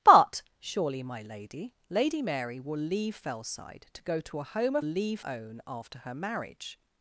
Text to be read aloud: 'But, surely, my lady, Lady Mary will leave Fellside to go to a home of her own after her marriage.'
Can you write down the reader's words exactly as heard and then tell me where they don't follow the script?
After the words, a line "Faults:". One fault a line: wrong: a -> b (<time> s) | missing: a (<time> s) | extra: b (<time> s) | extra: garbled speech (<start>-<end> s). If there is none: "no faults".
'But, surely, my lady, Lady Mary will leave Fellside to go to a home of leave own after her marriage.'
Faults:
wrong: her -> leave (4.8 s)